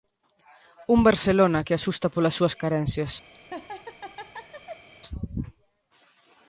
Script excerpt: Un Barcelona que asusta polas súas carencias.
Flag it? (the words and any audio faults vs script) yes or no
yes